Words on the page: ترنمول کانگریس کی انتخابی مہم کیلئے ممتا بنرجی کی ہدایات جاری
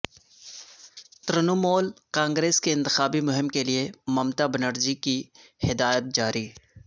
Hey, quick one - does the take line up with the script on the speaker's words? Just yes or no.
yes